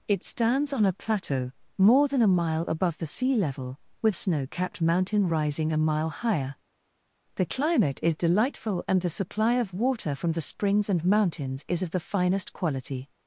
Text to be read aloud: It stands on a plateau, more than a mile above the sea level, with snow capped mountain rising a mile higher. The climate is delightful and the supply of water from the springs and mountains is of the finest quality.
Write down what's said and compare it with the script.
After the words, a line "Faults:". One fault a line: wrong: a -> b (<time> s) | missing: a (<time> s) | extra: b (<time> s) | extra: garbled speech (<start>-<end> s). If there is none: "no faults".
It stands on a plateau, more than a mile above the sea level, with snow capped mountain rising a mile higher. The climate is delightful and the supply of water from the springs and mountains is of the finest quality.
Faults:
no faults